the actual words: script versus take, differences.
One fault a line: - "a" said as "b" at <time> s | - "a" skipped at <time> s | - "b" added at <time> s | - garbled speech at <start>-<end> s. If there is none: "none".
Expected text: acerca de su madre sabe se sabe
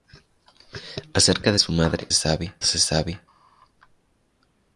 none